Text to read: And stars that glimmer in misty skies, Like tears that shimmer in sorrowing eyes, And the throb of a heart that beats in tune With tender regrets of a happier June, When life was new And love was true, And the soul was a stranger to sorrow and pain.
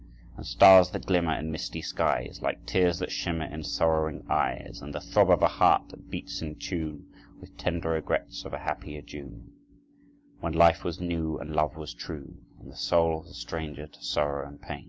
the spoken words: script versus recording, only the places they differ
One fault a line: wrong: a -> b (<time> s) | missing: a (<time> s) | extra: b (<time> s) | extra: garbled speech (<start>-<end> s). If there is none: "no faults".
no faults